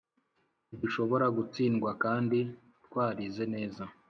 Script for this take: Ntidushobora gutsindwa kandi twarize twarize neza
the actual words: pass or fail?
fail